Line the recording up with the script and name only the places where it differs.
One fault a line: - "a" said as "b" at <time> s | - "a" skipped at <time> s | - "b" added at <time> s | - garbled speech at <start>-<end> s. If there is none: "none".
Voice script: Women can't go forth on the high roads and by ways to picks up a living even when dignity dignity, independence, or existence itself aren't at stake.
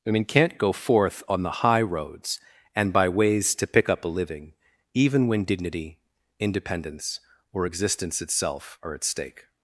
- "picks" said as "pick" at 3.7 s
- "dignity" skipped at 6.0 s
- "aren't" said as "are" at 8.8 s